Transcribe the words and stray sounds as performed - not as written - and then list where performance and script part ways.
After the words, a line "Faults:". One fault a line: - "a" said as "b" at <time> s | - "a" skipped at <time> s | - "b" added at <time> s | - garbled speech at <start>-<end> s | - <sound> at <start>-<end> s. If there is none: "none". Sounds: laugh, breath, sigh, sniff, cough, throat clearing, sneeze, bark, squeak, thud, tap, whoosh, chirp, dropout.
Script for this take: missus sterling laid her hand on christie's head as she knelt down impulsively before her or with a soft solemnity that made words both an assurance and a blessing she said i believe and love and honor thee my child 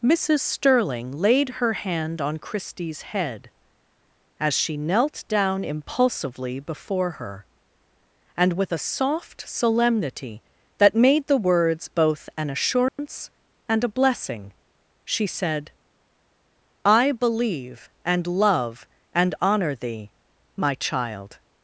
missus sterling laid her hand on christie's head as she knelt down impulsively before her and with a soft solemnity that made the words both an assurance and a blessing she said i believe and love and honor thee my child
Faults:
- "or" said as "and" at 8.3 s
- "the" added at 11.3 s
- dropout at 12.9-13.0 s